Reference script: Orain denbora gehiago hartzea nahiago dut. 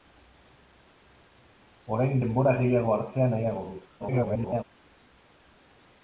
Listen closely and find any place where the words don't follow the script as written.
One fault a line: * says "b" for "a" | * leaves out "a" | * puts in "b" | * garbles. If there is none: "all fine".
* garbles